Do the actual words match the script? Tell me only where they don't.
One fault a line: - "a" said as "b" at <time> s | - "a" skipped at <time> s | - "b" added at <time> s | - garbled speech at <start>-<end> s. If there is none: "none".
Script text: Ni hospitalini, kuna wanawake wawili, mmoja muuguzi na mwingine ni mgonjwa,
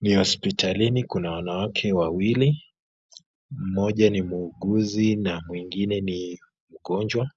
- "ni" added at 4.1 s